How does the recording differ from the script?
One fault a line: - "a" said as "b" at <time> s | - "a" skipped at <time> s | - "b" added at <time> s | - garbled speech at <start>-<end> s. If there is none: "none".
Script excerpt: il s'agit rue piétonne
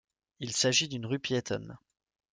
- "d'une" added at 0.9 s